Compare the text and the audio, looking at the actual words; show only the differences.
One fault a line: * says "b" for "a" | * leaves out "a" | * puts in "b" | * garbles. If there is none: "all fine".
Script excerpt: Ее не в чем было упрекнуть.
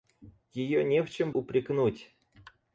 * leaves out "было"